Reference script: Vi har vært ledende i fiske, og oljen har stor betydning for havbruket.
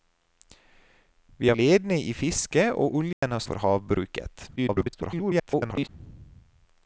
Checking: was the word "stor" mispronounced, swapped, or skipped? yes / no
yes